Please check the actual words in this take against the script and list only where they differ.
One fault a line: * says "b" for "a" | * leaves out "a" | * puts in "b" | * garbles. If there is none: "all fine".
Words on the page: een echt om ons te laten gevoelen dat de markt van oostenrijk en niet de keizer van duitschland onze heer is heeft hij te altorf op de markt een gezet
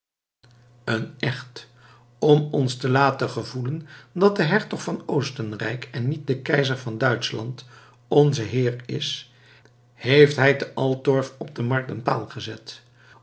* says "hertog" for "markt"
* puts in "paal"